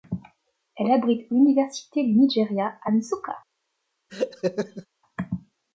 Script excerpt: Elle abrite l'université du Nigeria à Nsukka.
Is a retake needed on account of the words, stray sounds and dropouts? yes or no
yes